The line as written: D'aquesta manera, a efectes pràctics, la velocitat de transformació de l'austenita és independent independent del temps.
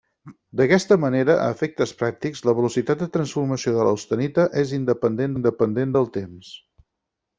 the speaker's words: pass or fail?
pass